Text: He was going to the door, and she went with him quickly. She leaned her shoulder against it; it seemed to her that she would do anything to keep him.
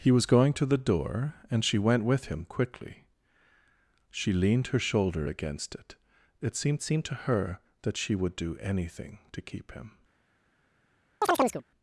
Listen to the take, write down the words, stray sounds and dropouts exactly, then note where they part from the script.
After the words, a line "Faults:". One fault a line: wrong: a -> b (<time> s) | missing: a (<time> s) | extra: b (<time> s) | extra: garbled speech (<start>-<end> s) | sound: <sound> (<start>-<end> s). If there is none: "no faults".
He was going to the door, and she went with him quickly. She leaned her shoulder against it; it seemed seemed to her that she would do anything to keep him.
Faults:
extra: seemed (6.8 s)
sound: chirp (11.2-11.6 s)